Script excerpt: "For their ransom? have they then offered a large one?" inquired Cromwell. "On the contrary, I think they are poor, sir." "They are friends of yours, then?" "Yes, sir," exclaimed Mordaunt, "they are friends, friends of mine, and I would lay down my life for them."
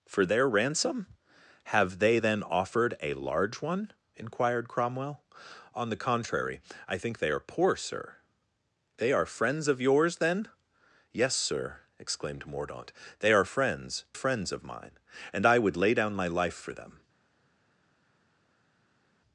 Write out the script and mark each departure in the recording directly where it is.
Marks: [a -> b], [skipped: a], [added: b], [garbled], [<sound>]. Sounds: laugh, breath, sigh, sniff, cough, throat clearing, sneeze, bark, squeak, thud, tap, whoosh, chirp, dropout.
"For their ransom? have they then offered a large one?" inquired Cromwell. "On the contrary, I think they are poor, sir." "They are friends of yours, then?" "Yes, sir," exclaimed Mordaunt, "they are friends, friends of mine, and I would lay down my life for them."